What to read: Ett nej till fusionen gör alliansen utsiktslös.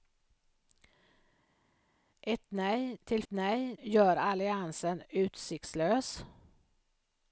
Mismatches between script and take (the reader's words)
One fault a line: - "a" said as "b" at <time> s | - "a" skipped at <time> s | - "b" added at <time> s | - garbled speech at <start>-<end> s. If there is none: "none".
- "fusionen" said as "nej" at 3.3 s